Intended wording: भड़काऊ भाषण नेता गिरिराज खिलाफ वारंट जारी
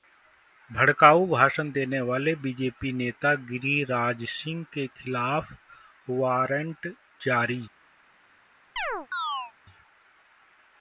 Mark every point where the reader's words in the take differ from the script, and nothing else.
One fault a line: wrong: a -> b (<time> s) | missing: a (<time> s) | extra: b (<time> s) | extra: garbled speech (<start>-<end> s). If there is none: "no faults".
extra: देने वाले बीजेपी (1.7 s)
extra: सिंह के (4.3 s)